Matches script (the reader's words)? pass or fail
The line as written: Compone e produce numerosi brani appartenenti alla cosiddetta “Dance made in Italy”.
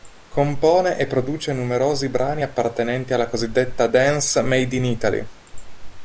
pass